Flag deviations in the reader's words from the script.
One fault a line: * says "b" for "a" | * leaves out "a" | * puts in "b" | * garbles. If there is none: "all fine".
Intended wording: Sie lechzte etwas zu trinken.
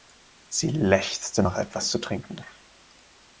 * puts in "nach"